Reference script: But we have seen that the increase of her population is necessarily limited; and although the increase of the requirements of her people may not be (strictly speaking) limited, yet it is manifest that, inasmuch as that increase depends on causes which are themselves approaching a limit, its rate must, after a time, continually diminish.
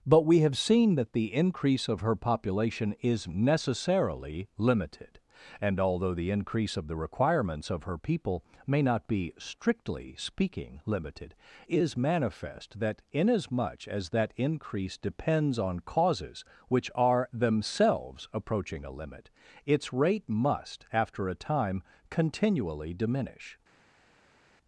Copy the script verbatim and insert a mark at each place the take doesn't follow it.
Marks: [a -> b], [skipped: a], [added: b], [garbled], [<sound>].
But we have seen that the increase of her population is necessarily limited; and although the increase of the requirements of her people may not be (strictly speaking) limited, [skipped: yet it] is manifest that, inasmuch as that increase depends on causes which are themselves approaching a limit, its rate must, after a time, continually diminish.